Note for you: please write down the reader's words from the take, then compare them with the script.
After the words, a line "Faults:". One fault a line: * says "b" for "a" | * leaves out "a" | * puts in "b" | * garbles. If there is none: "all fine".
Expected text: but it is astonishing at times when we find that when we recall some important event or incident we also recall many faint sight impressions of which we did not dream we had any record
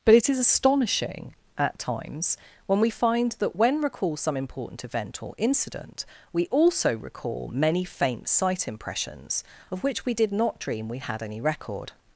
but it is astonishing at times when we find that when recall some important event or incident we also recall many faint sight impressions of which we did not dream we had any record
Faults:
* leaves out "we"